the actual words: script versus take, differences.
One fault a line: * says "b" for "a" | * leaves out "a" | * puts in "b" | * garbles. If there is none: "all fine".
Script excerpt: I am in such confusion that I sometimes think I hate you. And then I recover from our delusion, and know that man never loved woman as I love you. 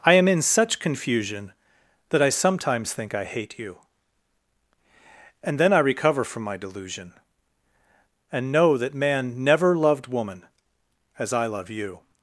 * says "my" for "our"